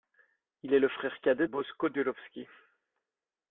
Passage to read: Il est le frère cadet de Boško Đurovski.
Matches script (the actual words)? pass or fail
fail